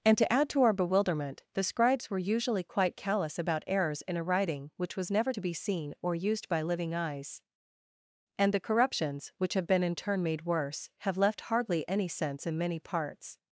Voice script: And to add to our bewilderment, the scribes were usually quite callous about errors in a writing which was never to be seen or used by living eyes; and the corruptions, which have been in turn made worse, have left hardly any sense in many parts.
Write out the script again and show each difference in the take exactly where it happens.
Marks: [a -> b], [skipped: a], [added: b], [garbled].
And to add to our bewilderment, the scribes were usually quite callous about errors in a writing which was never to be seen or used by living eyes; and the corruptions, which have been in turn made worse, have left hardly any sense in many parts.